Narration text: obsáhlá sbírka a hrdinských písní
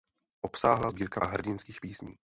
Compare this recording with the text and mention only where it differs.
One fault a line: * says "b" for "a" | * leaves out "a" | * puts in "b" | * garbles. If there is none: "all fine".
all fine